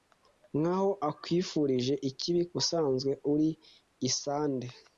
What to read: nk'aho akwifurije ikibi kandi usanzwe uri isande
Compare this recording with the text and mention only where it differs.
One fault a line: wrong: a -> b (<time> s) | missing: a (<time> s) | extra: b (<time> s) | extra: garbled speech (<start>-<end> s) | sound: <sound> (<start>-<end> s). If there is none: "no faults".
missing: kandi (2.4 s)